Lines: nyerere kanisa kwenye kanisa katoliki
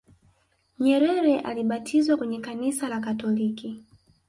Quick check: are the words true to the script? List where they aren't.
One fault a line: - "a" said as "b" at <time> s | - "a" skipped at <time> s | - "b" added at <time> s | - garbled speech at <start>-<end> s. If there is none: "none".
- "kanisa" said as "alibatizwa" at 1.4 s
- "la" added at 2.9 s